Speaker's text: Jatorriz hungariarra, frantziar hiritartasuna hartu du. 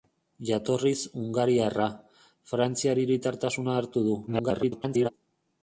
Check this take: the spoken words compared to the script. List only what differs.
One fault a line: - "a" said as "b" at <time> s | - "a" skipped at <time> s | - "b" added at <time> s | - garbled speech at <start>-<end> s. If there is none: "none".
- garbled speech at 4.3-5.1 s